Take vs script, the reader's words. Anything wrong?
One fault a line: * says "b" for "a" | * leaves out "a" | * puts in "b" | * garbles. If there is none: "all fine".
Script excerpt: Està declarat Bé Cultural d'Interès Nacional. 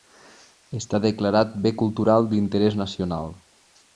all fine